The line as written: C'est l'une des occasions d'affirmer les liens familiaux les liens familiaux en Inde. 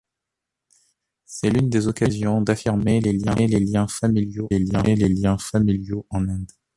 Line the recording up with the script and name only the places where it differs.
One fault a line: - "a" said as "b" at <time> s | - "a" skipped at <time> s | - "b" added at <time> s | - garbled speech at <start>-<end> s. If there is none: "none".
none